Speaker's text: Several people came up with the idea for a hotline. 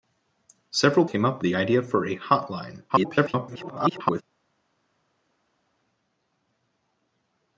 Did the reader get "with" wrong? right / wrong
wrong